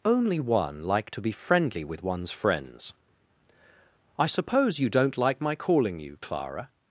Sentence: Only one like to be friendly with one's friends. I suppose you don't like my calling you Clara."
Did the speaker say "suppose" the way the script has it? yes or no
yes